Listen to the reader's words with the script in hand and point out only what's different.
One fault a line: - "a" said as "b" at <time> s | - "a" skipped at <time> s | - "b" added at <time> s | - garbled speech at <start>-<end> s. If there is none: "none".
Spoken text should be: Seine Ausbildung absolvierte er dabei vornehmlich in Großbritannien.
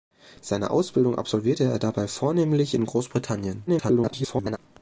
- garbled speech at 3.7-4.6 s